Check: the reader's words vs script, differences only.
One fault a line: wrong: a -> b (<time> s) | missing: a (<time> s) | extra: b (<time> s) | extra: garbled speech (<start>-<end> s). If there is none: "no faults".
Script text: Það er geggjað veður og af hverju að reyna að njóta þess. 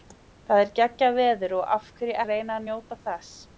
no faults